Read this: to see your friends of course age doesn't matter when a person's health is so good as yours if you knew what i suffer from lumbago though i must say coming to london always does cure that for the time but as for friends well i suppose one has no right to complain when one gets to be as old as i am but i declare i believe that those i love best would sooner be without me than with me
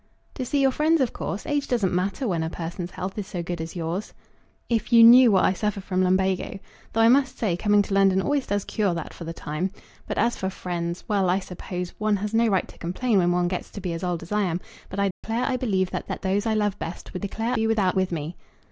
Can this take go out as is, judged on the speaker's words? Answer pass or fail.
fail